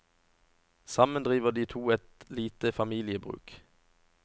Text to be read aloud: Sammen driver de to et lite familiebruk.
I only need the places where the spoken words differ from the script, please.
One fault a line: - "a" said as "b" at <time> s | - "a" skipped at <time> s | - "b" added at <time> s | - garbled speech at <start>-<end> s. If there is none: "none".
none